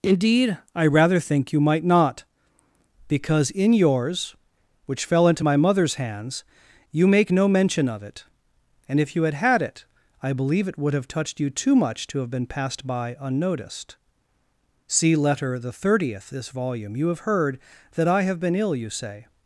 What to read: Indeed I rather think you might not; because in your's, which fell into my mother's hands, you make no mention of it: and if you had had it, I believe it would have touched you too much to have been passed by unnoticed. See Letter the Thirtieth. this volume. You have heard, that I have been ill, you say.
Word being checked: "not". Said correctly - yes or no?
yes